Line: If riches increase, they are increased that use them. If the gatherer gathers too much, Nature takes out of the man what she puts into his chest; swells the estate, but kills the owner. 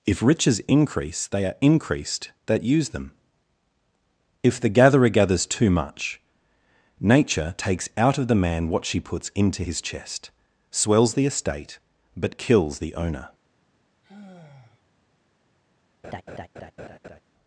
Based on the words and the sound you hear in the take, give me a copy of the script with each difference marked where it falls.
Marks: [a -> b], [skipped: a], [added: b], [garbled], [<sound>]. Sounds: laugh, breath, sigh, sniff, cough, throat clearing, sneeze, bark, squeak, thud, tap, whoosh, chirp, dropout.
If riches increase, they are increased that use them. If the gatherer gathers too much, Nature takes out of the man what she puts into his chest; swells the estate, but kills the owner. [sigh] [laugh]